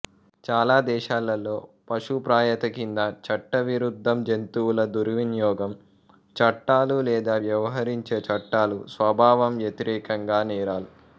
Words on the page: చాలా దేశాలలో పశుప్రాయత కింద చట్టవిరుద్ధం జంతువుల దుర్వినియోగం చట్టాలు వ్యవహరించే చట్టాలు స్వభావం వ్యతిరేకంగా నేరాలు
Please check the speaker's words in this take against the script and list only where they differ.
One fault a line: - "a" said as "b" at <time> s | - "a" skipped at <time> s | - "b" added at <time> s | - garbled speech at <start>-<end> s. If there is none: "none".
- "లేదా" added at 7.1 s